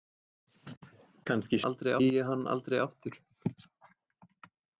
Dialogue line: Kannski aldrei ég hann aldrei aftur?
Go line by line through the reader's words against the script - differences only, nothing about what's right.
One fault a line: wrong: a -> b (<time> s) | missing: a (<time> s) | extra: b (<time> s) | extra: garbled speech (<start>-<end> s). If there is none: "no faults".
no faults